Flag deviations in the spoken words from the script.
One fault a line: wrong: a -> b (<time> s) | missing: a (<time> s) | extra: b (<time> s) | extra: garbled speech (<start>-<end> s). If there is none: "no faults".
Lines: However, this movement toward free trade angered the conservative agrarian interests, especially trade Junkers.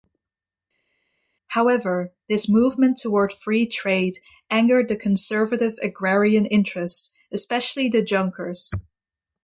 wrong: trade -> the (7.9 s)